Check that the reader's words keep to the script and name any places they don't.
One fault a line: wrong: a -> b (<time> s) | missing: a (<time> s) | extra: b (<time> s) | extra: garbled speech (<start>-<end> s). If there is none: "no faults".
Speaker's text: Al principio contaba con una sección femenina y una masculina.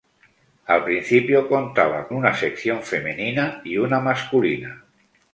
missing: con (2.1 s)